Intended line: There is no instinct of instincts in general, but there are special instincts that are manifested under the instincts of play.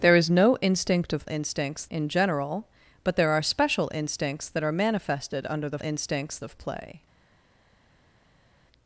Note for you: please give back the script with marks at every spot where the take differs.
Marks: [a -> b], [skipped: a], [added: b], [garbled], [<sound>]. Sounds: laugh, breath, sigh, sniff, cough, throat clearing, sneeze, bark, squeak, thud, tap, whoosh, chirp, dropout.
There is no instinct of instincts in general, but there are special instincts that are manifested under the instincts of play.